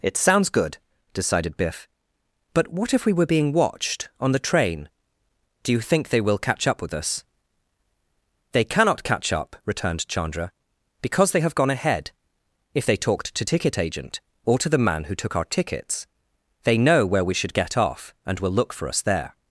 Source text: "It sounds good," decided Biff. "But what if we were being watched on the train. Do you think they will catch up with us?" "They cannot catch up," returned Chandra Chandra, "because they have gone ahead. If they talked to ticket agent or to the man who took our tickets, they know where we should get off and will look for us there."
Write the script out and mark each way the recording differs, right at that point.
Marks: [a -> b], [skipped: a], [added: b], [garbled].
"It sounds good," decided Biff. "But what if we were being watched on the train. Do you think they will catch up with us?" "They cannot catch up," returned Chandra [skipped: Chandra,] "because they have gone ahead. If they talked to ticket agent or to the man who took our tickets, they know where we should get off and will look for us there."